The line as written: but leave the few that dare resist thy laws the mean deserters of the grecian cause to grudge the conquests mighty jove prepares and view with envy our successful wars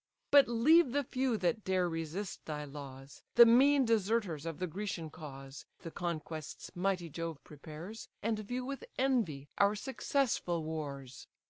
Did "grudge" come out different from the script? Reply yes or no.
yes